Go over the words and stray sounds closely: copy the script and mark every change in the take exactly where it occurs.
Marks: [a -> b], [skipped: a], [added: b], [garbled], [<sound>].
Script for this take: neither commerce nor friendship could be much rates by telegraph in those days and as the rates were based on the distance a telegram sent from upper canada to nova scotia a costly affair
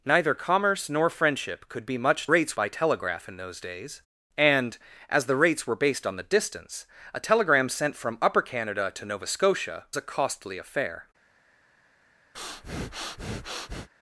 neither commerce nor friendship could be much rates by telegraph in those days and as the rates were based on the distance a telegram sent from upper canada to nova scotia a costly affair [breath]